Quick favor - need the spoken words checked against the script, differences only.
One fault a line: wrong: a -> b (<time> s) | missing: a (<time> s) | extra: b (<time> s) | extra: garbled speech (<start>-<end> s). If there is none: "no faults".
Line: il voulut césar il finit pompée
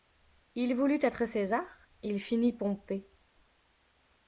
extra: être (1.0 s)